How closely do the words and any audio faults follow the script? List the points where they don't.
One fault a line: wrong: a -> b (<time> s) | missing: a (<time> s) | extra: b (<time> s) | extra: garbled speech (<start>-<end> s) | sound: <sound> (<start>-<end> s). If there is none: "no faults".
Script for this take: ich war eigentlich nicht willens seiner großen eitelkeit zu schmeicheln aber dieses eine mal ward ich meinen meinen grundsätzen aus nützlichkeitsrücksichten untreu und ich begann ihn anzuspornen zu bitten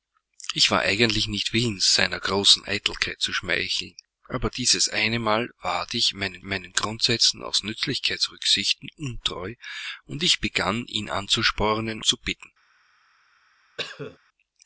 sound: cough (13.8-14.2 s)